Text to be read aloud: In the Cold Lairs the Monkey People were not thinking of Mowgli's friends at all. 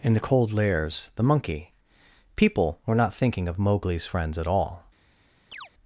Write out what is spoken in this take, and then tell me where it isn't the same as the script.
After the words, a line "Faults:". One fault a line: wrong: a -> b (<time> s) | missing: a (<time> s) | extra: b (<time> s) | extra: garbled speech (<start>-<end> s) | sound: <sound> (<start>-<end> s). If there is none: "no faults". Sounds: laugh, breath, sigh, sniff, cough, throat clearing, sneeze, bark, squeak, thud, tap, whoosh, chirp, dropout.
In the Cold Lairs the Monkey People were not thinking of Mowgli's friends at all.
Faults:
sound: chirp (5.5-5.7 s)